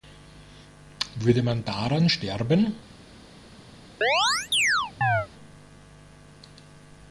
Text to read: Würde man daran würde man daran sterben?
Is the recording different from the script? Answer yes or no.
yes